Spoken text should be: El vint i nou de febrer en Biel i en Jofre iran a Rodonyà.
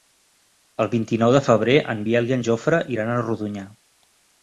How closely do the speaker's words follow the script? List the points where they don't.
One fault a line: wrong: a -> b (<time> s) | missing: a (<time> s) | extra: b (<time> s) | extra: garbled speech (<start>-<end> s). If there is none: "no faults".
no faults